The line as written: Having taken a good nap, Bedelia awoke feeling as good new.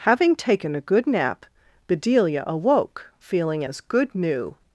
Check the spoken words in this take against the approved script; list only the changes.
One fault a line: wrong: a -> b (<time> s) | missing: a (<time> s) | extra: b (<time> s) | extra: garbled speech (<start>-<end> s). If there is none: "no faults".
no faults